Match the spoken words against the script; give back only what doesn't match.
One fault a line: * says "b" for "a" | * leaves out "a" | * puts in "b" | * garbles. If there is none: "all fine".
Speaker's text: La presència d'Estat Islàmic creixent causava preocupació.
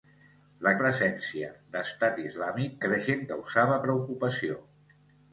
all fine